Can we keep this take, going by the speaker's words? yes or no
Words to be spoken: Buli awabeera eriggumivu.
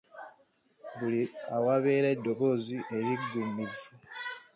no